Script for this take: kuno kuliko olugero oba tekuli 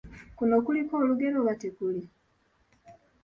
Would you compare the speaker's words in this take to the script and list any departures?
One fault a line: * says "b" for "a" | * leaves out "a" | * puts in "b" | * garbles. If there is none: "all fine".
all fine